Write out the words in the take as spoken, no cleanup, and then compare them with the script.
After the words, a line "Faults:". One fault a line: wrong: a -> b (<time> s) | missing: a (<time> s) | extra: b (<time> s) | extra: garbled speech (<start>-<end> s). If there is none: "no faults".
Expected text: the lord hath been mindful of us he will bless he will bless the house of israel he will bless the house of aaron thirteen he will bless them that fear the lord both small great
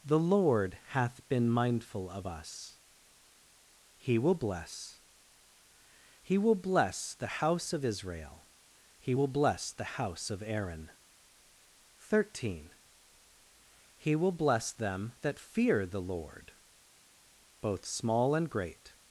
the lord hath been mindful of us he will bless he will bless the house of israel he will bless the house of aaron thirteen he will bless them that fear the lord both small and great
Faults:
extra: and (18.3 s)